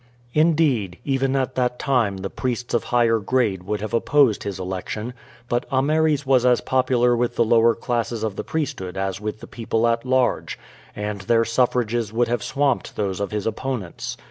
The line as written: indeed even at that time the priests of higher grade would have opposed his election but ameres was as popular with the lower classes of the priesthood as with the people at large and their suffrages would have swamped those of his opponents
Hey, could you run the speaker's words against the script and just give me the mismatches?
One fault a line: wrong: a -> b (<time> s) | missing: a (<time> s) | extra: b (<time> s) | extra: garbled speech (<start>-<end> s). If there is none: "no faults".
no faults